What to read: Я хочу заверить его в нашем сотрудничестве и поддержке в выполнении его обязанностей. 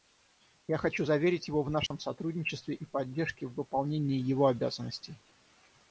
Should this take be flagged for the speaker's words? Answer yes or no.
no